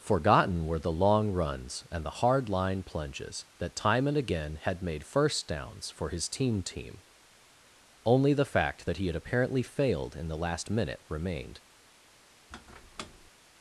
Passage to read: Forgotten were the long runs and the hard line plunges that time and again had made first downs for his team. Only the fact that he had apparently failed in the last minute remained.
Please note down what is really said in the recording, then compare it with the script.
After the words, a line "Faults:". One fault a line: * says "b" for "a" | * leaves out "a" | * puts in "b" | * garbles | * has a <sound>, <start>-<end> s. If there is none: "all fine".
Forgotten were the long runs and the hard line plunges that time and again had made first downs for his team team. Only the fact that he had apparently failed in the last minute remained.
Faults:
* puts in "team"
* has a squeak, 12.5-13.3 s